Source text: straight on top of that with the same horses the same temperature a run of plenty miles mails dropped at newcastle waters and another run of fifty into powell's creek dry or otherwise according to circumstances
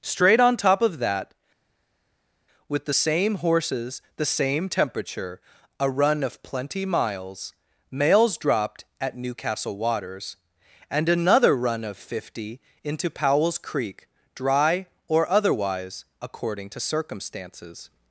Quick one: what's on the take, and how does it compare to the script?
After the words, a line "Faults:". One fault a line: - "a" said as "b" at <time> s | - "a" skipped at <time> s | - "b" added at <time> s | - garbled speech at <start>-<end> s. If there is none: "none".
straight on top of that with the same horses the same temperature a run of plenty miles mails dropped at newcastle waters and another run of fifty into powell's creek dry or otherwise according to circumstances
Faults:
none